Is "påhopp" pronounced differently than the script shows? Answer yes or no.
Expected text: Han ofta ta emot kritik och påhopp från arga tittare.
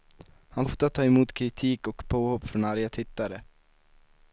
no